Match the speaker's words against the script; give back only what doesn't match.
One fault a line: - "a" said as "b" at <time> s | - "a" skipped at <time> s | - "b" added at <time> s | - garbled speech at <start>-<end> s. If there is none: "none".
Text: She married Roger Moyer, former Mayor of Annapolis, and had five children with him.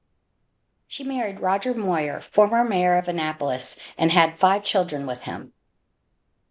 none